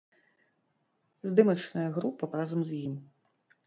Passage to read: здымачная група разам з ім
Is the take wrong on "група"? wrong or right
right